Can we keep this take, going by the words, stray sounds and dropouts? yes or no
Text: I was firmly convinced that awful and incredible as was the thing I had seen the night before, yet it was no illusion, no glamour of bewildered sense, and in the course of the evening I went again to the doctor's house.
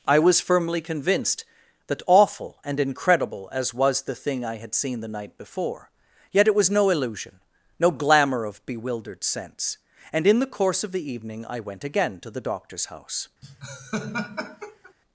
no